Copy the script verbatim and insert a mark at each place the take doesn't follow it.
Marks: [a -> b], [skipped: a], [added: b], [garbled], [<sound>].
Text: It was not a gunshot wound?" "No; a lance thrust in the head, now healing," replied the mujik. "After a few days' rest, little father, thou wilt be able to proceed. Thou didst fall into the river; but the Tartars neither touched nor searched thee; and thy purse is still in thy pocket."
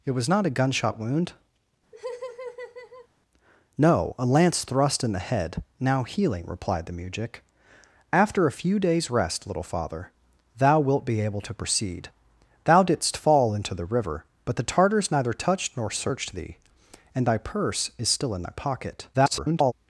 It was not a gunshot wound?" [laugh] "No; a lance thrust in the head, now healing," replied the mujik. "After a few days' rest, little father, thou wilt be able to proceed. Thou didst fall into the river; but the Tartars neither touched nor searched thee; and thy purse is still in thy pocket." [garbled]